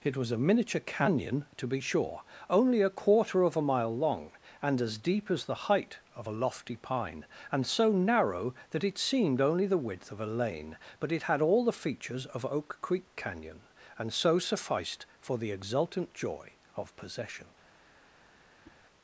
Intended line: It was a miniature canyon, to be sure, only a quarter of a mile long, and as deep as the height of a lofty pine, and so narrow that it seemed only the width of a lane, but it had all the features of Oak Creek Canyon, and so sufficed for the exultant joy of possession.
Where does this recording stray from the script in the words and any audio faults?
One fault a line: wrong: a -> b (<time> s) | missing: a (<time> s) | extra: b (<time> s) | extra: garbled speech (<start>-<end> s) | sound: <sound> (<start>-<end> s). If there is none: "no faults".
sound: whoosh (18.6-18.8 s)